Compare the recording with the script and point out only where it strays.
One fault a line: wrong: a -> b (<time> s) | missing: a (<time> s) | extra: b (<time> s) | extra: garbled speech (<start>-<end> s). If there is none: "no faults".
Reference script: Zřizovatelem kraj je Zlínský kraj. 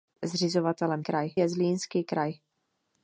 no faults